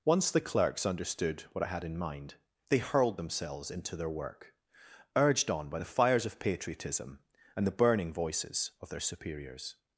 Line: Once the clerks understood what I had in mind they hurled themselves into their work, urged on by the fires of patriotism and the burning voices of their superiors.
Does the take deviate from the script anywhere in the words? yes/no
no